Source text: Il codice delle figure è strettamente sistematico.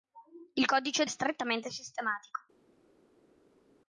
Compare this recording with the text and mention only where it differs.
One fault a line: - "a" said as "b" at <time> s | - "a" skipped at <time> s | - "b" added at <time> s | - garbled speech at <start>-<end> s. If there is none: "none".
- "delle figure" skipped at 1.0 s